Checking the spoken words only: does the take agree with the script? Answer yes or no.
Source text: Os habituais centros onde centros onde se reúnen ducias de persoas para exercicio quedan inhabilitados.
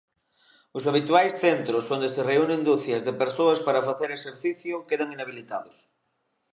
no